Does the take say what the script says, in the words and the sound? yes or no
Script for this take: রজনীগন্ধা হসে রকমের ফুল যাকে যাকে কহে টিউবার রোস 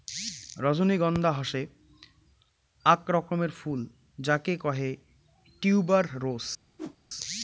no